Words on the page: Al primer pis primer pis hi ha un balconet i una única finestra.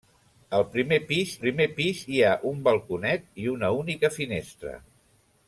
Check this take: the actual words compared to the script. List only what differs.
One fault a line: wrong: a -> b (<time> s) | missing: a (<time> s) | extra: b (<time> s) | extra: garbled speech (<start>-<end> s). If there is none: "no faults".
no faults